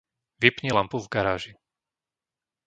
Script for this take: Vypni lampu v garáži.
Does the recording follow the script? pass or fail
pass